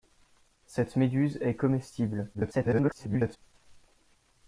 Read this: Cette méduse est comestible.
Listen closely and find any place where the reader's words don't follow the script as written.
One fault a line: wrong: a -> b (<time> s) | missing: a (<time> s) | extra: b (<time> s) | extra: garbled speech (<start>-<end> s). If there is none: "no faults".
extra: garbled speech (2.3-3.4 s)